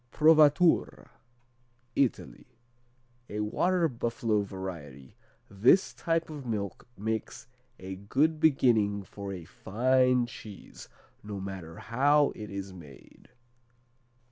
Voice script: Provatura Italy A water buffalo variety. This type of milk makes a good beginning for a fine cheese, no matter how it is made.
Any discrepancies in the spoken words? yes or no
no